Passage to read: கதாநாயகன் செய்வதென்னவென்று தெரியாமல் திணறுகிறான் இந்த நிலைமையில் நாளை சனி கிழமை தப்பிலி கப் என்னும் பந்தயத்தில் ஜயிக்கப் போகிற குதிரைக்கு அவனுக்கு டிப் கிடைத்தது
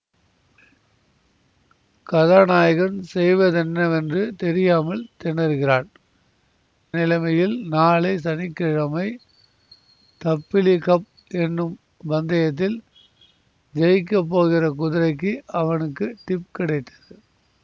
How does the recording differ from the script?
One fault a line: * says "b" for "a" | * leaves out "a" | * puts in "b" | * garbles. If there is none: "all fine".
* leaves out "இந்த"